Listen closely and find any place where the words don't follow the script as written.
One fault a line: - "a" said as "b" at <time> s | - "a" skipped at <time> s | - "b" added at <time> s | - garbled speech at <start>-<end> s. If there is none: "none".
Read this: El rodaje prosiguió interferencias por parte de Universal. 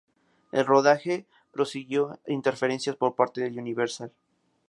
none